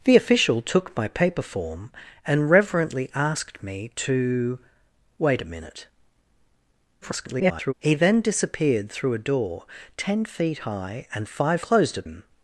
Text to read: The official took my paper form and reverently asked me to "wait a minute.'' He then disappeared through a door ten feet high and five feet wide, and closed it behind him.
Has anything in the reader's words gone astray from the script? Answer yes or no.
yes